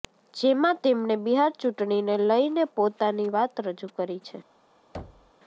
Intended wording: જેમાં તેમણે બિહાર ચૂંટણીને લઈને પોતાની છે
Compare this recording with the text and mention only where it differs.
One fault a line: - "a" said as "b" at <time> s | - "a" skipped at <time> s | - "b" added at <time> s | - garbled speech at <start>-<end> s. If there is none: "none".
- "વાત રજૂ કરી" added at 3.3 s